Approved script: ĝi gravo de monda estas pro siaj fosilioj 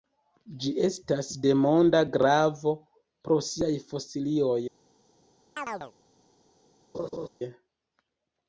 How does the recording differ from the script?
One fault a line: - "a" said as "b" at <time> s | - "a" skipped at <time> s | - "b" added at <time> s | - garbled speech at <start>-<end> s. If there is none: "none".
- "gravo" said as "estas" at 0.9 s
- "estas" said as "gravo" at 2.2 s